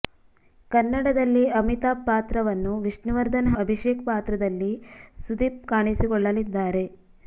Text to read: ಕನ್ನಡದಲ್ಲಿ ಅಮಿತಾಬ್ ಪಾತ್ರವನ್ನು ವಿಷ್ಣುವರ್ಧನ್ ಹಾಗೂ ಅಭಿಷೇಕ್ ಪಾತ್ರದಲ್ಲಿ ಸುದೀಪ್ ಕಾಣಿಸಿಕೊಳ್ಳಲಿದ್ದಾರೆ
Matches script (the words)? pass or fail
fail